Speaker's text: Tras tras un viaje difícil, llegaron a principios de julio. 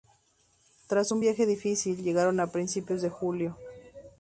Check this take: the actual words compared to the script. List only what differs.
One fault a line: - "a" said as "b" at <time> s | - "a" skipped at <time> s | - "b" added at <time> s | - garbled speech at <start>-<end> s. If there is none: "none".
- "tras" skipped at 1.1 s